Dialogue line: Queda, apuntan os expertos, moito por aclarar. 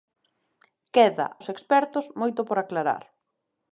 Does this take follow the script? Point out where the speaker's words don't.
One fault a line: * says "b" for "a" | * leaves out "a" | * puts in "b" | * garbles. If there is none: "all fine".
* leaves out "apuntan"